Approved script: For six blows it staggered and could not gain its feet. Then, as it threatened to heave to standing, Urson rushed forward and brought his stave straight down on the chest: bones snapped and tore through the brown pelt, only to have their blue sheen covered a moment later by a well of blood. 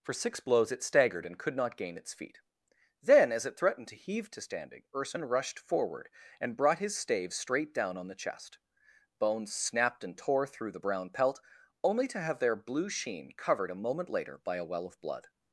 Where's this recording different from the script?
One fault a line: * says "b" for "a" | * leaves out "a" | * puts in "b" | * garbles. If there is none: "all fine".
all fine